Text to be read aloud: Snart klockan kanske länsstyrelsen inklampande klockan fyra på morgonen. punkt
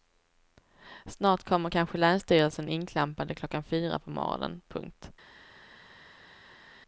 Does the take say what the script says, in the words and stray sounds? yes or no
no